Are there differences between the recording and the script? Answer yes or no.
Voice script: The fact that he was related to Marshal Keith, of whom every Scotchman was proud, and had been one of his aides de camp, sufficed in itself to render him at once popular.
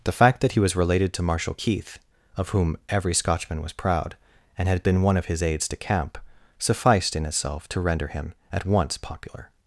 no